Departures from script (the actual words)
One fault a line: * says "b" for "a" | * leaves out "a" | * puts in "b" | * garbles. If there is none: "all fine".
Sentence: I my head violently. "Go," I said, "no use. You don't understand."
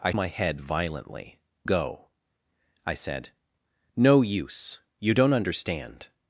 all fine